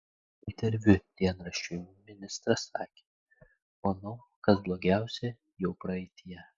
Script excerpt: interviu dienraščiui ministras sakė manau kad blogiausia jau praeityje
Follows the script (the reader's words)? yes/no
yes